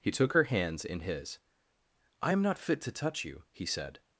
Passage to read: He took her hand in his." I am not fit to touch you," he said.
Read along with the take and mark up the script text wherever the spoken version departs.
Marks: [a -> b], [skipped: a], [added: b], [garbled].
He took her [hand -> hands] in his." I am not fit to touch you," he said.